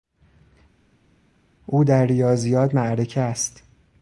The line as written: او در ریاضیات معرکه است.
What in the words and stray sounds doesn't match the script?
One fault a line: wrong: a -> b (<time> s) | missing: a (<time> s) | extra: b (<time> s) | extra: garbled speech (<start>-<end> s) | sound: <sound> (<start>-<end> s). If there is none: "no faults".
no faults